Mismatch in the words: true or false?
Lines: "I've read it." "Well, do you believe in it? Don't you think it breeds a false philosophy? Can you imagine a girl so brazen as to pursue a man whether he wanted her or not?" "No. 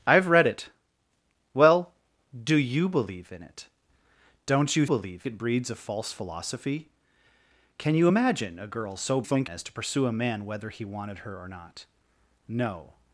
true